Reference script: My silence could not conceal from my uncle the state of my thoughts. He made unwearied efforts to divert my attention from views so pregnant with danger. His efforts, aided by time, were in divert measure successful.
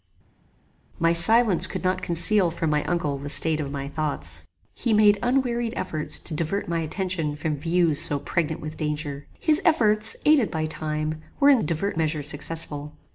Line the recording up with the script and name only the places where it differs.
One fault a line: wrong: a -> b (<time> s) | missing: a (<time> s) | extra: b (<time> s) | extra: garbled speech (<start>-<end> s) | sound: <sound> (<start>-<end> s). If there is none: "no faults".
no faults